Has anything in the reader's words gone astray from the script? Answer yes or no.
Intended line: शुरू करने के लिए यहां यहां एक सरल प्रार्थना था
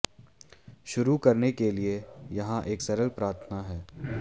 yes